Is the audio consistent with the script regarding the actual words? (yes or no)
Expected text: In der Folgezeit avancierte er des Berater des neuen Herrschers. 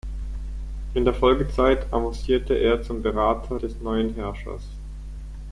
no